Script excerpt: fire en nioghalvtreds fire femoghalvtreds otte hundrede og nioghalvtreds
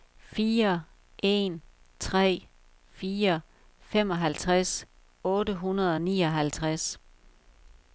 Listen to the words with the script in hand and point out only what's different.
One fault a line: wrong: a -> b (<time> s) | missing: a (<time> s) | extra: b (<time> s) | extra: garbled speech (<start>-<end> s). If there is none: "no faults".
wrong: nioghalvtreds -> tre (2.0 s)